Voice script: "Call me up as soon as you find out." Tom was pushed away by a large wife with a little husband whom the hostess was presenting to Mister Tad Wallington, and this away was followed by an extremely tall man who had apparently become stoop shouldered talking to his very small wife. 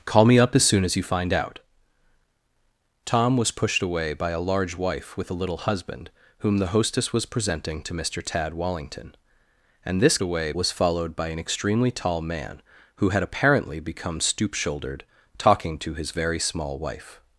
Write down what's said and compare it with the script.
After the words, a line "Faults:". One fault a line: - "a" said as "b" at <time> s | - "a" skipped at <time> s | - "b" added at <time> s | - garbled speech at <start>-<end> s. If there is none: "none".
"Call me up as soon as you find out." Tom was pushed away by a large wife with a little husband whom the hostess was presenting to Mister Tad Wallington, and this away was followed by an extremely tall man who had apparently become stoop shouldered talking to his very small wife.
Faults:
none